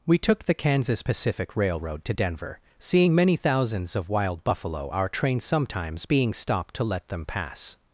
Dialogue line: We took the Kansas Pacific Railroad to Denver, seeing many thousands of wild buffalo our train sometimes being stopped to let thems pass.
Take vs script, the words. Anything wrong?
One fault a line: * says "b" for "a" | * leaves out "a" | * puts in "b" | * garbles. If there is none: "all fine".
* says "them" for "thems"